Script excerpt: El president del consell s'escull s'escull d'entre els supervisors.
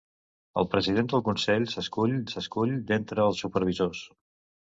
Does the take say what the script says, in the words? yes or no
yes